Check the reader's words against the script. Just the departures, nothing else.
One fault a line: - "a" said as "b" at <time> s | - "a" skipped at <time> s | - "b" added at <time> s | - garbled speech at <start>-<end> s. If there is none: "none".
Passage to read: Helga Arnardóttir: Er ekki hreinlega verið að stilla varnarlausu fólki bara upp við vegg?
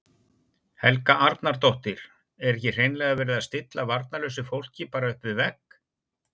none